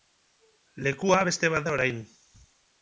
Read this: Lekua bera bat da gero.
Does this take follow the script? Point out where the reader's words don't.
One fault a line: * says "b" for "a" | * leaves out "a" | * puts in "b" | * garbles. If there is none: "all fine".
* says "beste" for "bera"
* says "orain" for "gero"